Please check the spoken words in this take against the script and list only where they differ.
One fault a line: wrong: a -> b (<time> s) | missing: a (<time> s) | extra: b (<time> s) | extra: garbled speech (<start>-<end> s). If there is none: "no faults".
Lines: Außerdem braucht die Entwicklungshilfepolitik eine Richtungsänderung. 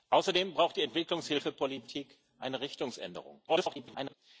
extra: garbled speech (3.5-4.1 s)